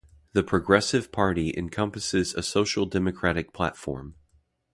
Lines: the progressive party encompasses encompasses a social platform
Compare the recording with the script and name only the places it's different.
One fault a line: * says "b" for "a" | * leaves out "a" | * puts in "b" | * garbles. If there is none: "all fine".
* leaves out "encompasses"
* puts in "democratic"